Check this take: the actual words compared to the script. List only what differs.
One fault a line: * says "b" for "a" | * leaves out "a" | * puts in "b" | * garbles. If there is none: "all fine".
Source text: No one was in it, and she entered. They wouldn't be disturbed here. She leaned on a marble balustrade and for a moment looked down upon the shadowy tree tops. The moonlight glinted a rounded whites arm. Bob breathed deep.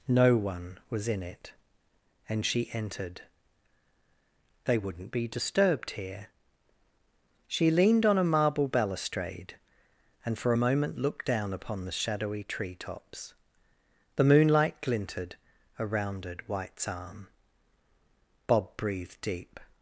all fine